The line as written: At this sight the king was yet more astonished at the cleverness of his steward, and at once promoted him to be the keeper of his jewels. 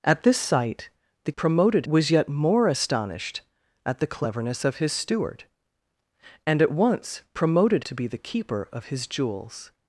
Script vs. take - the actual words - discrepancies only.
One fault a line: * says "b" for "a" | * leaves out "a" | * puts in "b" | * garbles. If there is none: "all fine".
* says "promoted" for "king"
* leaves out "him"